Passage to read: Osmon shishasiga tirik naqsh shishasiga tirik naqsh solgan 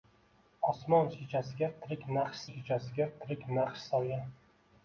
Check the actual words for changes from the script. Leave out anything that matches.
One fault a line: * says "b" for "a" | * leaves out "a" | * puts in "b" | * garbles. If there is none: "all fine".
all fine